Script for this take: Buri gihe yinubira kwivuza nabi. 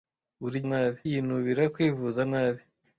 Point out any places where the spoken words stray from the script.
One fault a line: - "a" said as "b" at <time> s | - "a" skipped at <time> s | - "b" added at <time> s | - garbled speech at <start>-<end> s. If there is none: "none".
- "gihe" said as "nabi" at 0.7 s